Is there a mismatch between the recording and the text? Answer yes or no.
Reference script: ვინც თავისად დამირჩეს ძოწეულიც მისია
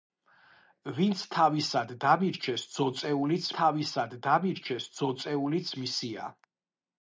yes